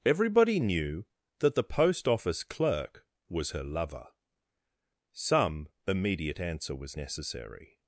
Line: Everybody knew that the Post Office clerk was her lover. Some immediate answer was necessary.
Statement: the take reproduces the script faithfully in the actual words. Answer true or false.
true